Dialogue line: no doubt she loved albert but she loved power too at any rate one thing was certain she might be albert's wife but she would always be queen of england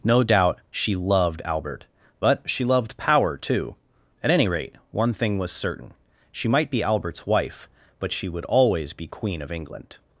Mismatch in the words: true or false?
false